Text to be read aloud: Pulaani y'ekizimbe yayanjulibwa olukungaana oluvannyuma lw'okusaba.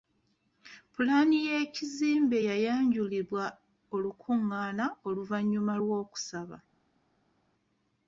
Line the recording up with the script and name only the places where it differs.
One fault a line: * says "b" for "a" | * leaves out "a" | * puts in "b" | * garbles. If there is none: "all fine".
all fine